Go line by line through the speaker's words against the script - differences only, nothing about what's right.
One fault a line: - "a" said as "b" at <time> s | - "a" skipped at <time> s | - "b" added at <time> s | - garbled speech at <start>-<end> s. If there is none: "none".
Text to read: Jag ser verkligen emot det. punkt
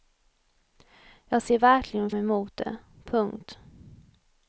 none